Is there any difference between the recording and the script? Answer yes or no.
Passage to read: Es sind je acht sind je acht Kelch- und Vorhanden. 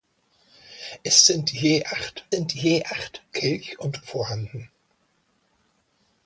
no